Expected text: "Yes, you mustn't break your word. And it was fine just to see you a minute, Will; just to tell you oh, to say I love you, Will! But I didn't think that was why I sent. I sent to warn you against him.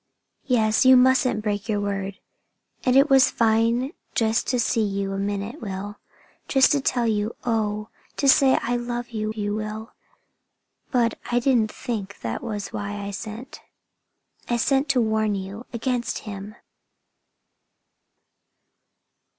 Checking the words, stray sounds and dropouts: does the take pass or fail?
fail